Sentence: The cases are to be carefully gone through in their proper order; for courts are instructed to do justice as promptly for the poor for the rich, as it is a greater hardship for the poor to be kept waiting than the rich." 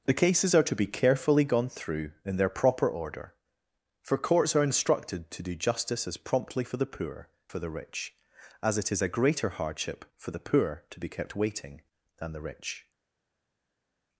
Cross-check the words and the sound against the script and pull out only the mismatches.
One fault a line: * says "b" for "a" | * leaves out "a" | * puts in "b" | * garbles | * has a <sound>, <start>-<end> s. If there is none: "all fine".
all fine